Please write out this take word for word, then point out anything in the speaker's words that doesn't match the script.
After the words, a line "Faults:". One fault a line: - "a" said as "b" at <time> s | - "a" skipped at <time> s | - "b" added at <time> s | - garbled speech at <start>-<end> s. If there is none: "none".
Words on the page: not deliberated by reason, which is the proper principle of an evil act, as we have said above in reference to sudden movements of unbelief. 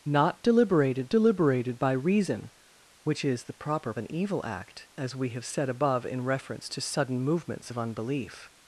not deliberated deliberated by reason, which is the proper an evil act, as we have said above in reference to sudden movements of unbelief.
Faults:
- "deliberated" added at 1.1 s
- "principle of" skipped at 3.9 s